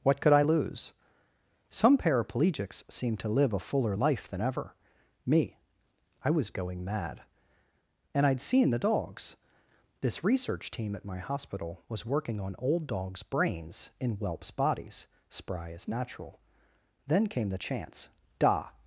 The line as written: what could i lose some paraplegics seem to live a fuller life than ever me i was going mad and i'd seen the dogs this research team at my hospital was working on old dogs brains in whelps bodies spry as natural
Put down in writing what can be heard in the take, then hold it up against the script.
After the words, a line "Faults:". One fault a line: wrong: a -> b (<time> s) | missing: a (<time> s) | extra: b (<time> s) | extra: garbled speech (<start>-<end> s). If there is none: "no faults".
what could i lose some paraplegics seem to live a fuller life than ever me i was going mad and i'd seen the dogs this research team at my hospital was working on old dogs brains in whelps bodies spry as natural then came the chance da
Faults:
extra: then came the chance da (17.1 s)